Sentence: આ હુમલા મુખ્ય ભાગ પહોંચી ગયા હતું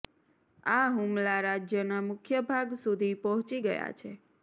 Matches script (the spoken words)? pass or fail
fail